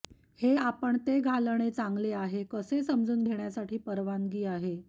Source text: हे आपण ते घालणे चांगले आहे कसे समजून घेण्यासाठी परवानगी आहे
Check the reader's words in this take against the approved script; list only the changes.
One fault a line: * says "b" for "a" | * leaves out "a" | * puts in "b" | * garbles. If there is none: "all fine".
all fine